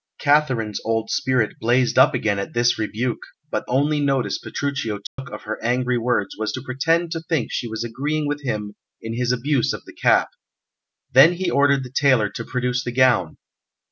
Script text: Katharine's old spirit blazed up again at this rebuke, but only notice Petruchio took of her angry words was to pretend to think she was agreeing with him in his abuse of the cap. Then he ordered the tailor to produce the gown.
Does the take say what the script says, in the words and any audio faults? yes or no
no